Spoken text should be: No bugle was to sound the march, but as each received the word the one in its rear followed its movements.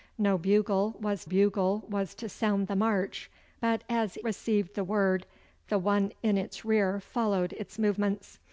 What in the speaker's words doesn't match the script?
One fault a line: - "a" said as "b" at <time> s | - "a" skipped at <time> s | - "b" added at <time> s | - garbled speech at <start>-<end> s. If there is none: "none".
- "bugle was" added at 1.3 s
- "each" skipped at 4.2 s